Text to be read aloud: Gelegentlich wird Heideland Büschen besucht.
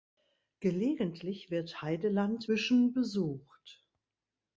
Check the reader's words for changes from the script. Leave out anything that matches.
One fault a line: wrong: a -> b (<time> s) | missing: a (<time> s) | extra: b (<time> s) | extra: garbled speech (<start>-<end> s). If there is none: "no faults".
no faults